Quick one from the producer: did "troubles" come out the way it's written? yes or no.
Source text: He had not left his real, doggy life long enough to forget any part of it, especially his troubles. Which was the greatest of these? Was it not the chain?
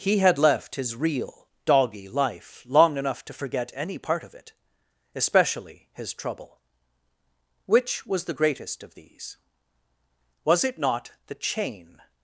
no